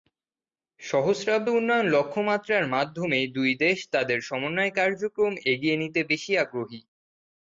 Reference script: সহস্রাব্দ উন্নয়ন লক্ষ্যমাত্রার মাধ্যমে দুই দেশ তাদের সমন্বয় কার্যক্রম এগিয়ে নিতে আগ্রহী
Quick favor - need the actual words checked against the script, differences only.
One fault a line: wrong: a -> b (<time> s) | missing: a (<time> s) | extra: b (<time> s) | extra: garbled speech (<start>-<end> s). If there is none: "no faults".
extra: বেশি (6.1 s)